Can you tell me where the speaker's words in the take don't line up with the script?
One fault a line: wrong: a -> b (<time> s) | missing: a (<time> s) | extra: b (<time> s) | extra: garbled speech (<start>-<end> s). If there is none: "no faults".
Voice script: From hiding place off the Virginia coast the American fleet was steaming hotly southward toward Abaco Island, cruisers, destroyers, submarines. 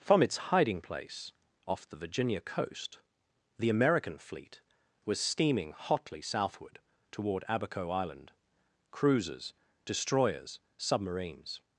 extra: its (0.2 s)